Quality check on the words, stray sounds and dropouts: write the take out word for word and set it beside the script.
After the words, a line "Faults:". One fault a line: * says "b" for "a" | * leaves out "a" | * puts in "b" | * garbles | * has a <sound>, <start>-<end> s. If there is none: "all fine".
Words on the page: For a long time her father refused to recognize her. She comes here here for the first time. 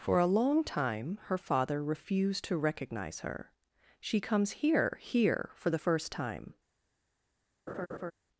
For a long time her father refused to recognize her. She comes here here for the first time.
Faults:
* has a laugh, 7.7-8.1 s